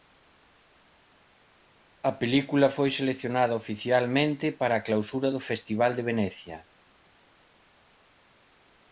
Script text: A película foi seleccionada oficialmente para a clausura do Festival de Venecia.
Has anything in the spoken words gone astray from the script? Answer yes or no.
no